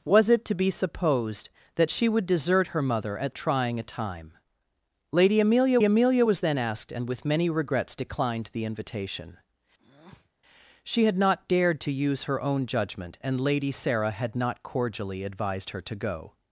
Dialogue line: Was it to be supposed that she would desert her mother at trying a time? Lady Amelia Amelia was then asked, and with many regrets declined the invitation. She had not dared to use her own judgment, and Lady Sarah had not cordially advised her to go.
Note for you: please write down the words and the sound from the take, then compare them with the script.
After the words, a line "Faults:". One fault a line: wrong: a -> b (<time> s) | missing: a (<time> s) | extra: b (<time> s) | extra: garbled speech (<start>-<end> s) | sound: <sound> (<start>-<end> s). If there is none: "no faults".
Was it to be supposed that she would desert her mother at trying a time? Lady Amelia Amelia was then asked, and with many regrets declined the invitation. She had not dared to use her own judgment, and Lady Sarah had not cordially advised her to go.
Faults:
sound: breath (9.8-10.3 s)